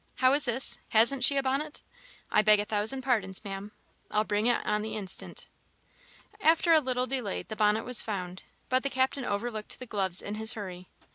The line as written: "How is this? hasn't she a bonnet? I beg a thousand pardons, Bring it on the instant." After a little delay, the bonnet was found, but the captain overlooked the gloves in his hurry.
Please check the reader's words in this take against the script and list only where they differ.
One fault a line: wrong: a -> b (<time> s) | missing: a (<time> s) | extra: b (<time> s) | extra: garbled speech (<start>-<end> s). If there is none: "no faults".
extra: Maam I'll (3.5 s)